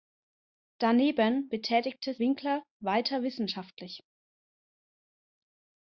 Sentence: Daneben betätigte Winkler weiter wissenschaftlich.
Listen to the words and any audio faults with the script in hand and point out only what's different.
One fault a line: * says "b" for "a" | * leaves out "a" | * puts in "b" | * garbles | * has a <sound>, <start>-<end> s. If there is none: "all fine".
all fine